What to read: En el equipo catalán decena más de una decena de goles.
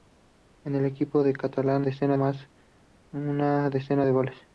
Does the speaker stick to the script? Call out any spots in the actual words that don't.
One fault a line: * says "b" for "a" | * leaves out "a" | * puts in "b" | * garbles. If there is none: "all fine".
all fine